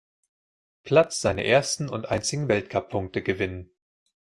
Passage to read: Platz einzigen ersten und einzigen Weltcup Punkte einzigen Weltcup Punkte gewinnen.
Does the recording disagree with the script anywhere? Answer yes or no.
yes